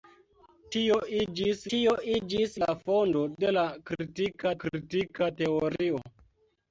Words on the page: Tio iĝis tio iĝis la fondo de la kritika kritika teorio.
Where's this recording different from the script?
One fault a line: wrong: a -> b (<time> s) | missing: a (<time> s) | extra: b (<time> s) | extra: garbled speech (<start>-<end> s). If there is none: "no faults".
no faults